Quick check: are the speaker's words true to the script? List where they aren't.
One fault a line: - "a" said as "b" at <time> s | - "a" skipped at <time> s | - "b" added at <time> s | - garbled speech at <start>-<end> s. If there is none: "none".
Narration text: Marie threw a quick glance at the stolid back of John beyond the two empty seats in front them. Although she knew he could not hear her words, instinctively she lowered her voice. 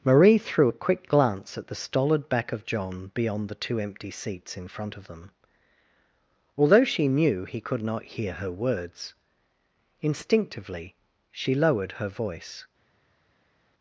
- "of" added at 5.0 s